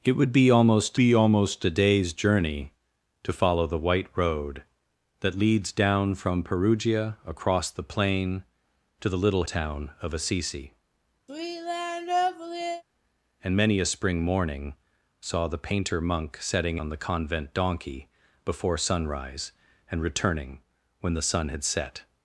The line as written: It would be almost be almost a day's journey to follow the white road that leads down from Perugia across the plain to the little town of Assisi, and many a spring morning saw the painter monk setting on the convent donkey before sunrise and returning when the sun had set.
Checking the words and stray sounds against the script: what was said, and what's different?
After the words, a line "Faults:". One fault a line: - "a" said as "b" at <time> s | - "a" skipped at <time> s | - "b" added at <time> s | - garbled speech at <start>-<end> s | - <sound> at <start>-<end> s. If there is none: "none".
It would be almost be almost a day's journey to follow the white road that leads down from Perugia across the plain to the little town of Assisi, and many a spring morning saw the painter monk setting on the convent donkey before sunrise and returning when the sun had set.
Faults:
- sigh at 11.3-12.8 s